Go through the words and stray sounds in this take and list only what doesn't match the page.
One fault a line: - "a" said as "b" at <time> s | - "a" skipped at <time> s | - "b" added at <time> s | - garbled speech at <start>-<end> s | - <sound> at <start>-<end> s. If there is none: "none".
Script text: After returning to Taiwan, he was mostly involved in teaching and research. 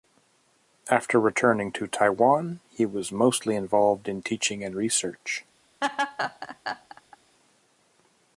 - laugh at 5.8-7.2 s